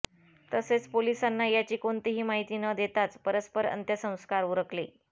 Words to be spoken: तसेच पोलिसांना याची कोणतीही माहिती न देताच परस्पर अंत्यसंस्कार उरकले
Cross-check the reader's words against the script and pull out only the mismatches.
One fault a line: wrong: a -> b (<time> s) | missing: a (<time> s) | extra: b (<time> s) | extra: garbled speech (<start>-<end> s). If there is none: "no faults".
no faults